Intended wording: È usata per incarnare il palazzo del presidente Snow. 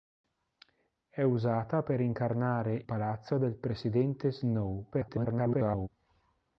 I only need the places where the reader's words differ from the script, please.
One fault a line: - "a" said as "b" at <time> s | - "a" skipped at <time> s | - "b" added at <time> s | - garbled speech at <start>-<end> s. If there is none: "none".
- "il" skipped at 2.9 s
- garbled speech at 4.9-5.9 s